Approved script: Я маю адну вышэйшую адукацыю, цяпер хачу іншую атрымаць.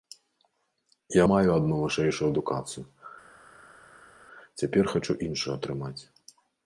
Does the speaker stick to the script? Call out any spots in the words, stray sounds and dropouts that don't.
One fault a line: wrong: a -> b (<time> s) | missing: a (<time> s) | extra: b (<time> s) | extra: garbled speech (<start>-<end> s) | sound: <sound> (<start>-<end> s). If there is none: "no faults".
no faults